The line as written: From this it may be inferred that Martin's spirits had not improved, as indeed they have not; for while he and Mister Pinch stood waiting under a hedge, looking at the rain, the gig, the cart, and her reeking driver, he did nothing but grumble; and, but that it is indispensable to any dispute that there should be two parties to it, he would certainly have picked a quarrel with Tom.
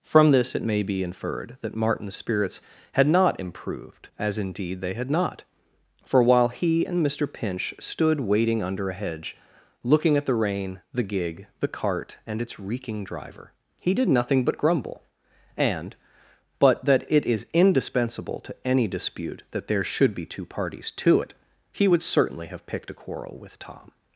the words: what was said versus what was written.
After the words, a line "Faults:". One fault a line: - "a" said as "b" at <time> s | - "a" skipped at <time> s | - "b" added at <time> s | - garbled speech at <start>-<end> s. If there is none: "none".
From this it may be inferred that Martin's spirits had not improved, as indeed they had not; for while he and Mister Pinch stood waiting under a hedge, looking at the rain, the gig, the cart, and its reeking driver, he did nothing but grumble; and, but that it is indispensable to any dispute that there should be two parties to it, he would certainly have picked a quarrel with Tom.
Faults:
- "have" said as "had" at 4.9 s
- "her" said as "its" at 12.4 s